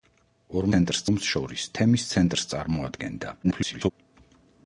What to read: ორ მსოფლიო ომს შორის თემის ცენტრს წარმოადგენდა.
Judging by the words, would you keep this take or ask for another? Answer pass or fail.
fail